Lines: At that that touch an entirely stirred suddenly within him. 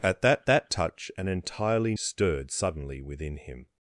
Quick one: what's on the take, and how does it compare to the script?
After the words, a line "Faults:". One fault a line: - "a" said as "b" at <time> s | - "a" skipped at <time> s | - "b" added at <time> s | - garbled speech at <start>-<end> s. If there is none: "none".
At that that touch an entirely stirred suddenly within him.
Faults:
none